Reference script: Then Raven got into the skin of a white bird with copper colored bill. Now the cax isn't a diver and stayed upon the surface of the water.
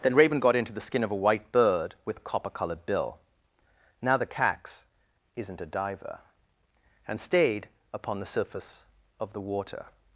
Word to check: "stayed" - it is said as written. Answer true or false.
true